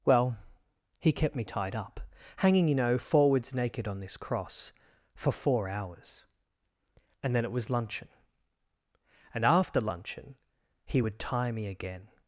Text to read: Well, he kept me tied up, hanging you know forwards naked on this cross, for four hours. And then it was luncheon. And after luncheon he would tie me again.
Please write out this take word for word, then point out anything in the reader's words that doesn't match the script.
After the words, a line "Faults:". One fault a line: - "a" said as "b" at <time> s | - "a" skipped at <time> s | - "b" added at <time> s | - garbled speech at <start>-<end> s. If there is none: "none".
Well, he kept me tied up, hanging you know forwards naked on this cross, for four hours. And then it was luncheon. And after luncheon he would tie me again.
Faults:
none